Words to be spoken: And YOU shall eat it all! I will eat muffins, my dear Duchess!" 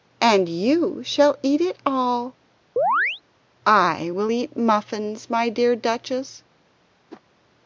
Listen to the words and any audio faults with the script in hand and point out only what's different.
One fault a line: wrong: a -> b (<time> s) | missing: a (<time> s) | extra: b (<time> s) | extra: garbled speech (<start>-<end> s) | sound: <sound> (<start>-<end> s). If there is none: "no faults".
sound: chirp (2.8-3.2 s)
sound: whoosh (7.1-7.2 s)